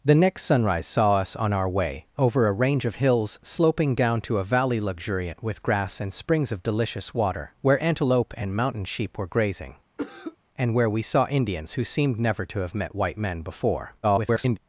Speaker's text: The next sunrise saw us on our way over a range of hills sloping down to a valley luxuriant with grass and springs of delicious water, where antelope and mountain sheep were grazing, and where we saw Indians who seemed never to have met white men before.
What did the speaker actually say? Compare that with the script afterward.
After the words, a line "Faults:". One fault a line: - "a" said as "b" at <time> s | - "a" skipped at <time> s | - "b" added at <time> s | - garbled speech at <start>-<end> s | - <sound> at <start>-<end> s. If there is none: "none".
The next sunrise saw us on our way over a range of hills sloping down to a valley luxuriant with grass and springs of delicious water, where antelope and mountain sheep were grazing, and where we saw Indians who seemed never to have met white men before. [garbled]
Faults:
- cough at 10.0-10.4 s
- garbled speech at 14.0-14.6 s